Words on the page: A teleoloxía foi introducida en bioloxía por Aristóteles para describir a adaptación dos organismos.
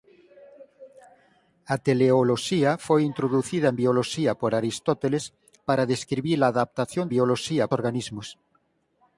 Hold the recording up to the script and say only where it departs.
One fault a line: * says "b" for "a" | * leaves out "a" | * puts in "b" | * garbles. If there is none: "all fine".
* says "bioloxía" for "dos"